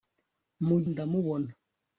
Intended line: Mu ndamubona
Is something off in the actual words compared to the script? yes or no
no